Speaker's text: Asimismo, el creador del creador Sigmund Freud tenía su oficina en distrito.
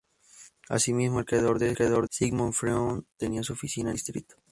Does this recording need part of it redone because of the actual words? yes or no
no